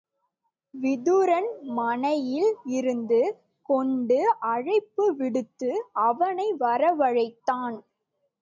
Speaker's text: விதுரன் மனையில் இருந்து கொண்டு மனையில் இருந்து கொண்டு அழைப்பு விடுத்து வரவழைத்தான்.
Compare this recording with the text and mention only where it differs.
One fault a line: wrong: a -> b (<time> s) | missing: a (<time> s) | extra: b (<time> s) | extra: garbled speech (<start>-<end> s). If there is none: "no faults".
missing: மனையில் இருந்து கொண்டு (4.2 s)
extra: அவனை (6.1 s)